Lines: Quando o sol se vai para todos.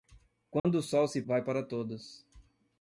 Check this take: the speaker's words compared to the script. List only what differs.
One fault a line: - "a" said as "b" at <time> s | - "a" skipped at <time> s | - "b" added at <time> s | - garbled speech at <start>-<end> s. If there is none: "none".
none